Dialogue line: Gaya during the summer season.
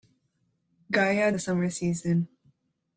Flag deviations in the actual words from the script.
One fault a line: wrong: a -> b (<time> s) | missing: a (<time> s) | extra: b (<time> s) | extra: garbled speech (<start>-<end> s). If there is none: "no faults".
missing: during (1.3 s)